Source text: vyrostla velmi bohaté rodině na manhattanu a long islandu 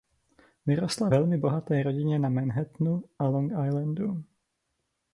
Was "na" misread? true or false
false